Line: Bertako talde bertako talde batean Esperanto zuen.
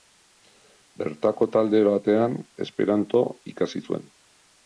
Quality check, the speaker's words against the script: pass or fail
fail